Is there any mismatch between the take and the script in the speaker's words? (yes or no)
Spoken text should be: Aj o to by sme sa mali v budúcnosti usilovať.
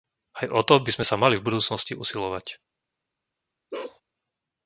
no